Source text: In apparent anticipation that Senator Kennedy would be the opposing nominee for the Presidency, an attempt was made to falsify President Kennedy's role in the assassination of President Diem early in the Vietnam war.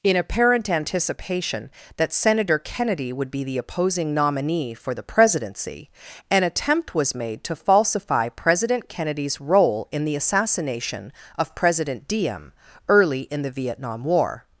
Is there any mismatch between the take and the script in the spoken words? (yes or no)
no